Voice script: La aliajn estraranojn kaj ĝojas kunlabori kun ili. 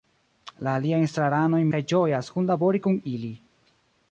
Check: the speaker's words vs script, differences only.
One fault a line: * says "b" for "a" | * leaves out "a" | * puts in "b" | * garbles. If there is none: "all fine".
all fine